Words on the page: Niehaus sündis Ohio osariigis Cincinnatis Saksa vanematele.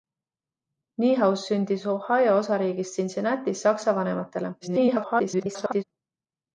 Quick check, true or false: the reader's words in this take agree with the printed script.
false